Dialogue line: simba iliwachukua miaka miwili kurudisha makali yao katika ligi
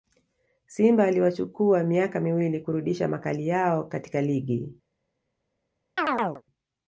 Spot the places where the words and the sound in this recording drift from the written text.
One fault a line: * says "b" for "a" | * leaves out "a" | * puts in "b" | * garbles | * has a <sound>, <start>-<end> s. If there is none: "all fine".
* has a chirp, 6.0-6.4 s